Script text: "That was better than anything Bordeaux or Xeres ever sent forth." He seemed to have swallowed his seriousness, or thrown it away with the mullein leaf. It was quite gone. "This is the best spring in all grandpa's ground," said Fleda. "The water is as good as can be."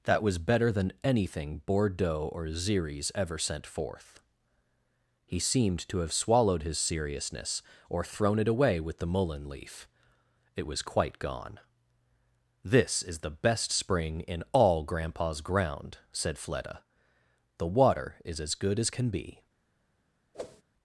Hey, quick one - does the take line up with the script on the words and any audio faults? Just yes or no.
no